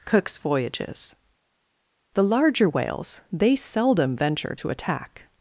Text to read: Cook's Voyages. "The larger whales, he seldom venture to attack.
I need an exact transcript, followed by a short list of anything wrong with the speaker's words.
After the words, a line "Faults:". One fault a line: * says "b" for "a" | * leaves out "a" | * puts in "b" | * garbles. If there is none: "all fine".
Cook's Voyages. "The larger whales, they seldom venture to attack.
Faults:
* says "they" for "he"